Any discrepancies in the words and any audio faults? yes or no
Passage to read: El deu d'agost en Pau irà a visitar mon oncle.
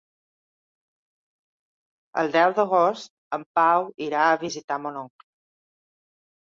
no